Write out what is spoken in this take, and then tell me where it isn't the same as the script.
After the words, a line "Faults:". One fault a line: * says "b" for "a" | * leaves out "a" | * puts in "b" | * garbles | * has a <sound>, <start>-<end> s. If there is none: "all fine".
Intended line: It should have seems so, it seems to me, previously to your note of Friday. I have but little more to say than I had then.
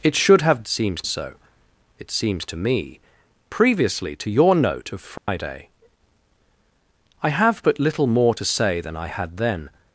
It should have seems so, it seems to me, previously to your note of Friday. I have but little more to say than I had then.
Faults:
* has a dropout, 5.2-5.3 s